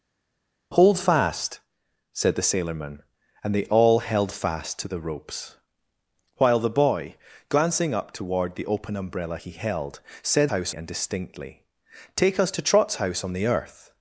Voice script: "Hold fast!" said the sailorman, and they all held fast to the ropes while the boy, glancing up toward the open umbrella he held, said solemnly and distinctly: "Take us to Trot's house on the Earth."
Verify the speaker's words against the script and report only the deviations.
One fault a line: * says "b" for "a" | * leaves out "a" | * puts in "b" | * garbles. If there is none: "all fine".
* says "house" for "solemnly"